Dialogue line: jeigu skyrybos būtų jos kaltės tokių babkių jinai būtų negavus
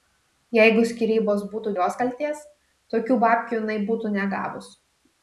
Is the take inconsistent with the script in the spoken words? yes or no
no